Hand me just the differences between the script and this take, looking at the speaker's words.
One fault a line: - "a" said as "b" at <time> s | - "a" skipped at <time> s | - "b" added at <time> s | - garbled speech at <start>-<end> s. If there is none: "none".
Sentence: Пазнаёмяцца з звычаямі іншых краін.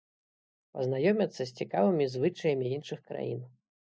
- "цікавымі" added at 1.6 s